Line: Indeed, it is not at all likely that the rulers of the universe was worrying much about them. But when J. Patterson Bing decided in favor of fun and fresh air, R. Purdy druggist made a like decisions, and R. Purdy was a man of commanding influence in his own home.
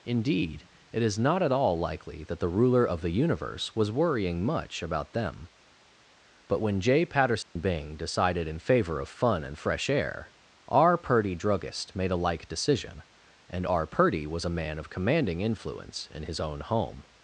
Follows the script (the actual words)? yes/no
no